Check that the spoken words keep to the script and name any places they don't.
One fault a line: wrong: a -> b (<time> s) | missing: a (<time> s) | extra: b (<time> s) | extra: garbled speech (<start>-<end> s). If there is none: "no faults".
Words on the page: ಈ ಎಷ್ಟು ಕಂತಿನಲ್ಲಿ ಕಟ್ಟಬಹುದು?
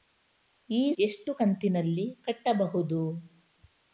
no faults